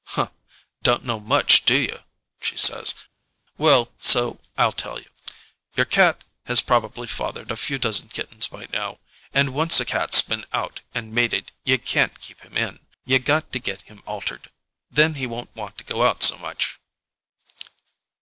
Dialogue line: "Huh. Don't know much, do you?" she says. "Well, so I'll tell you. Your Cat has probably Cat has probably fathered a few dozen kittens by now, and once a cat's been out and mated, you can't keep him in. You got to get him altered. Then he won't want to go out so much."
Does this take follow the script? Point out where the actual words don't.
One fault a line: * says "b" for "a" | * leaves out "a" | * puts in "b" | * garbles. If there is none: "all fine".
* leaves out "Cat has probably"